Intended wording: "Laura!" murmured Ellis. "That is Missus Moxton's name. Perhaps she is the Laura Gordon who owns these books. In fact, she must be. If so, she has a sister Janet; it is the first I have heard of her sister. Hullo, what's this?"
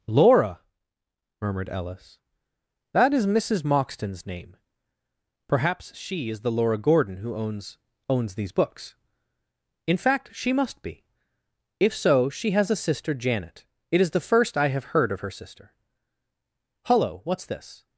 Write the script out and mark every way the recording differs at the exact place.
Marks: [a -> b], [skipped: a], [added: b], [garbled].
"Laura!" murmured Ellis. "That is Missus Moxton's name. Perhaps she is the Laura Gordon who owns [added: owns] these books. In fact, she must be. If so, she has a sister Janet; it is the first I have heard of her sister. Hullo, what's this?"